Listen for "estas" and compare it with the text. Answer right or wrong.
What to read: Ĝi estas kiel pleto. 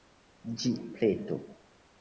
wrong